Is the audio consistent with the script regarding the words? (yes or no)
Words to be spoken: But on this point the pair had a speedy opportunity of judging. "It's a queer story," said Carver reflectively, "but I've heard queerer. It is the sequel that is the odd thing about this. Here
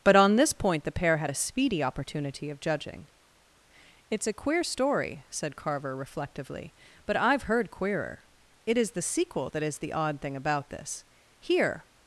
yes